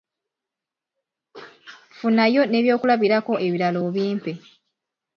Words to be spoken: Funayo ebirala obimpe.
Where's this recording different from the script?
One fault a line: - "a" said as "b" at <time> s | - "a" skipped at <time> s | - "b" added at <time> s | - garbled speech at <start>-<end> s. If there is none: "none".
- "n'ebyokulabirako" added at 2.5 s